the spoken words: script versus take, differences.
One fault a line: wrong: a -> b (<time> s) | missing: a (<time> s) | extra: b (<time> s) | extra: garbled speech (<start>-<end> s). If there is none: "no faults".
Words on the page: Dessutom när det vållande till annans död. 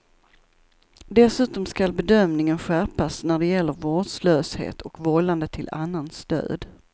extra: skall bedömningen skärpas (1.6 s)
extra: gäller vårdslöshet och (3.5 s)